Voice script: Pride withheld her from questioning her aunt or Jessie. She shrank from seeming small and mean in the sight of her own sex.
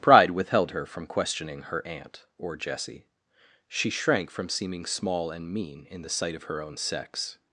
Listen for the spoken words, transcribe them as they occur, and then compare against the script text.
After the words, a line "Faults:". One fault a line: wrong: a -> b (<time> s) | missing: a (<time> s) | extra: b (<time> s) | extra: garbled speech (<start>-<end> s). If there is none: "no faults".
Pride withheld her from questioning her aunt or Jessie. She shrank from seeming small and mean in the sight of her own sex.
Faults:
no faults